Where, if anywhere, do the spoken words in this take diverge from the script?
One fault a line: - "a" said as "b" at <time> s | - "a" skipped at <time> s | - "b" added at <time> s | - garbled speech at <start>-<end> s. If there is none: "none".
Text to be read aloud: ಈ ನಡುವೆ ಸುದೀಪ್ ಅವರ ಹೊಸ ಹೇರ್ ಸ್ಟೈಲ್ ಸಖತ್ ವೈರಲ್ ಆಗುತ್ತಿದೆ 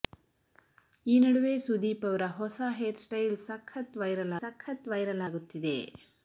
- "ಸಖತ್ ವೈರಲ್" added at 4.4 s